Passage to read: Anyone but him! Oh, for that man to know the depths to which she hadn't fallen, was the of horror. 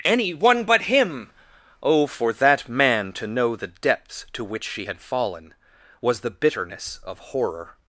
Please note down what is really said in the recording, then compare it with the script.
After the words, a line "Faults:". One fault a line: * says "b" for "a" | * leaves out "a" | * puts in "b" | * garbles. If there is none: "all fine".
Anyone but him! Oh, for that man to know the depths to which she had fallen, was the bitterness of horror.
Faults:
* says "had" for "hadn't"
* puts in "bitterness"